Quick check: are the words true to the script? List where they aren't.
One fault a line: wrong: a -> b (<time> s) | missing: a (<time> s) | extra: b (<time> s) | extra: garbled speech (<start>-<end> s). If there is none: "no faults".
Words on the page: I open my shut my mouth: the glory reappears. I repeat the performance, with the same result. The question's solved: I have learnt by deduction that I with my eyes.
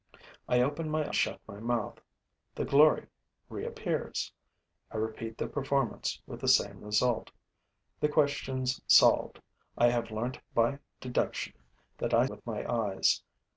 no faults